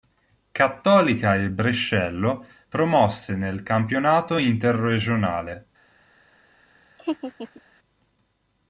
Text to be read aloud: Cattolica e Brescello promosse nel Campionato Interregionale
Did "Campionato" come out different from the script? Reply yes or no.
no